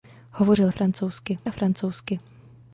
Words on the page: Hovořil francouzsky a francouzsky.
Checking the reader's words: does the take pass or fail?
pass